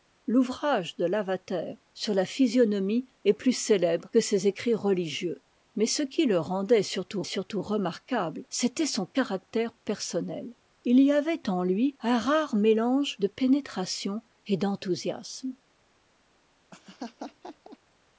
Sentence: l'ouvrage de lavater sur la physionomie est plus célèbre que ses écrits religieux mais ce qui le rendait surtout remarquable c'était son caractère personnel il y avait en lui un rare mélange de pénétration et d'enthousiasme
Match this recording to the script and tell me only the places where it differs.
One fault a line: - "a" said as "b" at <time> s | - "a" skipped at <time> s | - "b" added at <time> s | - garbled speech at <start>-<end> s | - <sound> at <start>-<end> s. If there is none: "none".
- "surtout" added at 7.2 s
- laugh at 16.7-17.8 s